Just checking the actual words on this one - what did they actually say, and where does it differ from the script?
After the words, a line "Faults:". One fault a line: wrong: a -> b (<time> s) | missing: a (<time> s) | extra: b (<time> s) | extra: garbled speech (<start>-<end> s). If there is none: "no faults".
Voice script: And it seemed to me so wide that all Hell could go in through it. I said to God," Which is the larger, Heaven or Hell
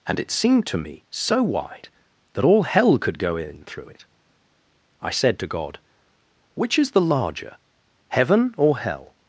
And it seemed to me so wide that all Hell could go in through it. I said to God," Which is the larger, Heaven or Hell
Faults:
no faults